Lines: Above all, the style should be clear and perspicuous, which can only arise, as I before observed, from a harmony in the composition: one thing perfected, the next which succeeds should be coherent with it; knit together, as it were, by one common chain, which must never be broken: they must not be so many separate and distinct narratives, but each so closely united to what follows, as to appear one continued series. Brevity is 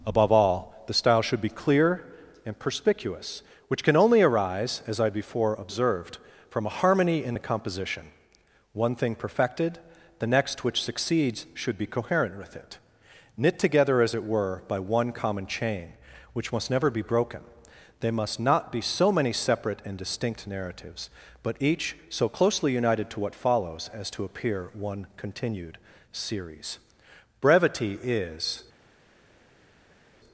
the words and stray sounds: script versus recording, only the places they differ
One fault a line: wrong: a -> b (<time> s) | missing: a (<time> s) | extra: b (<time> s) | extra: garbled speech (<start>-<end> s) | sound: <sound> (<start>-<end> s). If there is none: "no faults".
no faults